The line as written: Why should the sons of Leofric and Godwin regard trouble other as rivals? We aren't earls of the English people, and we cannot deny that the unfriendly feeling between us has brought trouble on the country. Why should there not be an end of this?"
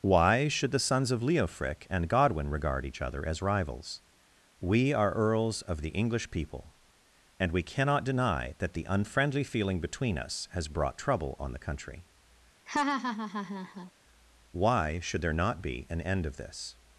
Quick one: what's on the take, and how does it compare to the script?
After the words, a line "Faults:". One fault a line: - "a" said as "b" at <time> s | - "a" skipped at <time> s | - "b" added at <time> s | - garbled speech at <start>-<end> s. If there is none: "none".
Why should the sons of Leofric and Godwin regard each other as rivals? We are earls of the English people, and we cannot deny that the unfriendly feeling between us has brought trouble on the country. Why should there not be an end of this?"
Faults:
- "trouble" said as "each" at 2.9 s
- "aren't" said as "are" at 4.9 s